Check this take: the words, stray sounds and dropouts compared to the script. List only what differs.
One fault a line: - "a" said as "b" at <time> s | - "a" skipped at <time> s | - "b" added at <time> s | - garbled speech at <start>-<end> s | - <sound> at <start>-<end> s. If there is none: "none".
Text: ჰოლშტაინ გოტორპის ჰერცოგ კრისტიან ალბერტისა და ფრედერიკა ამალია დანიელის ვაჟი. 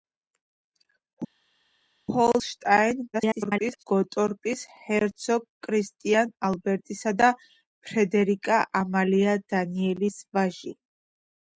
- garbled speech at 3.1-3.8 s